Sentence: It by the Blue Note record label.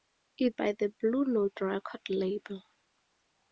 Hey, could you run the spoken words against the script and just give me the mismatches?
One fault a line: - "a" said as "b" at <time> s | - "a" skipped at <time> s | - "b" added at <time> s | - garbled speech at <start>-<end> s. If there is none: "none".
none